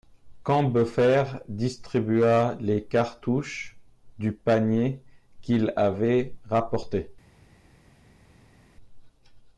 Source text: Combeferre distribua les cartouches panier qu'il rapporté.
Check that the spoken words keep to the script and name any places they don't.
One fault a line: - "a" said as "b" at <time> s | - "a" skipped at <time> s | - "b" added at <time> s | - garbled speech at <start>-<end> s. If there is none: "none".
- "du" added at 4.2 s
- "avait" added at 5.7 s